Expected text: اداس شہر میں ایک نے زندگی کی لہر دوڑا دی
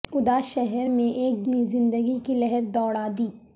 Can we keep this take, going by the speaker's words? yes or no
yes